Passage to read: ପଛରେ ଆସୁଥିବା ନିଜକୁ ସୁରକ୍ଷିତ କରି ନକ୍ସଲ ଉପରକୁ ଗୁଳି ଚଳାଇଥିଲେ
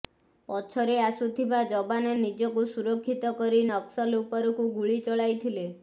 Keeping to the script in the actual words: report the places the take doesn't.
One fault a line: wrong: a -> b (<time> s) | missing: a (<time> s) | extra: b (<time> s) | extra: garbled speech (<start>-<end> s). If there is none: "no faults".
extra: ଯବାନ (1.7 s)